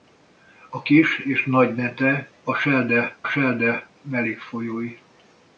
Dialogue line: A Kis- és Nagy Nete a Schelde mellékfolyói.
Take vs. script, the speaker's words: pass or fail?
fail